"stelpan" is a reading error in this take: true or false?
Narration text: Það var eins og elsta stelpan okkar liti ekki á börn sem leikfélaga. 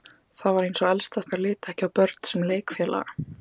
true